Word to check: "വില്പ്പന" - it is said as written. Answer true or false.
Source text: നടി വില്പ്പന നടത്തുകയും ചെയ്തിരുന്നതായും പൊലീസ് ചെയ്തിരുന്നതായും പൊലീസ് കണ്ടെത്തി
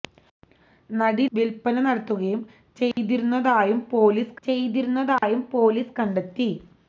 true